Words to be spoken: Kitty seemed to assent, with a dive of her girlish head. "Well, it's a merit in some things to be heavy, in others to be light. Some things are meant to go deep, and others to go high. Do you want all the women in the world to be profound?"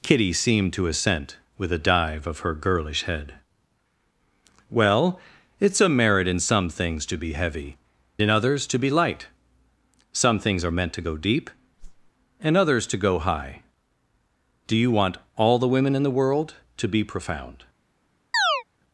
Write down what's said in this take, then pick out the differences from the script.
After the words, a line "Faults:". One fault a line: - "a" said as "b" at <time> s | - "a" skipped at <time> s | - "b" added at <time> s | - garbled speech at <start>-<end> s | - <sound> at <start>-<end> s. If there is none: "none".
Kitty seemed to assent, with a dive of her girlish head. "Well, it's a merit in some things to be heavy, in others to be light. Some things are meant to go deep, and others to go high. Do you want all the women in the world to be profound?"
Faults:
- whoosh at 11.8-12.1 s
- chirp at 18.3-18.6 s